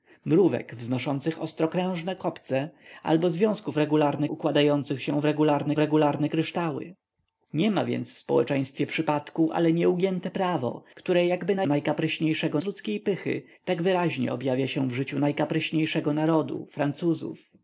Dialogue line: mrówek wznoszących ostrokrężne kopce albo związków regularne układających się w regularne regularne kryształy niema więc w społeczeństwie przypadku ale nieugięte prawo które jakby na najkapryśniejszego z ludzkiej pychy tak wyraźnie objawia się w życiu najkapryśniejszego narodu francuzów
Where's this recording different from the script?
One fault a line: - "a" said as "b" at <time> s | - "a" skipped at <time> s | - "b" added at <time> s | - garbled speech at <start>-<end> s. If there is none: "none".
none